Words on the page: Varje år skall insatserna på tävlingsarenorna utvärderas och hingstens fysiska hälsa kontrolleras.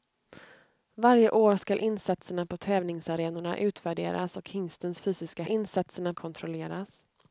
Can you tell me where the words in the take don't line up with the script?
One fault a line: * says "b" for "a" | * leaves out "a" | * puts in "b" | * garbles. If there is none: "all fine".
* says "insatserna" for "hälsa"